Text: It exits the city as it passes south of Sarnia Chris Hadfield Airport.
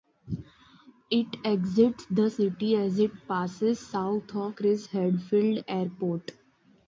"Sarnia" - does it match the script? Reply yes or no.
no